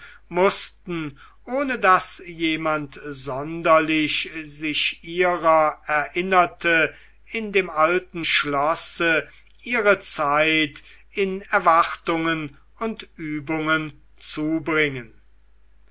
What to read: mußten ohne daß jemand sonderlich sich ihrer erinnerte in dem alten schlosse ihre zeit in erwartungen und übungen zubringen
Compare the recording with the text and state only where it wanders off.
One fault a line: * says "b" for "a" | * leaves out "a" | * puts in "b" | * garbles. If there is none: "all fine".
all fine